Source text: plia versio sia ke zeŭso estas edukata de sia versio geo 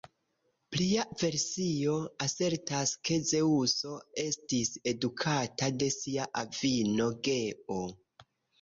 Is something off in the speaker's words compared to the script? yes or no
yes